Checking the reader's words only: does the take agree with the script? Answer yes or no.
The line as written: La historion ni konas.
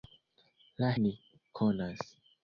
no